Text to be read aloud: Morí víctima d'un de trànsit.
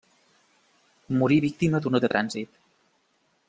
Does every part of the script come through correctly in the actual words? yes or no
yes